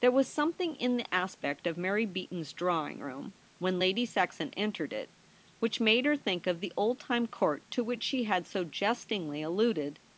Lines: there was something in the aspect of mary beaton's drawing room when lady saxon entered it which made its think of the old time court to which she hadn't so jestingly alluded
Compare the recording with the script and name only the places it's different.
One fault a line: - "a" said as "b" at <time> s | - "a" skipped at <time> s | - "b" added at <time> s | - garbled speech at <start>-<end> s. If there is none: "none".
- "its" said as "her" at 6.0 s
- "hadn't" said as "had" at 8.2 s